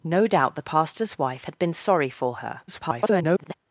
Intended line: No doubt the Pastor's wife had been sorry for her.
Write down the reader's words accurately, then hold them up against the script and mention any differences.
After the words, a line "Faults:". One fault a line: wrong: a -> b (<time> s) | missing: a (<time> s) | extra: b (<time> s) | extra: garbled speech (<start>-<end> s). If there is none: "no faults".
No doubt the Pastor's wife had been sorry for her. [garbled]
Faults:
extra: garbled speech (2.7-3.5 s)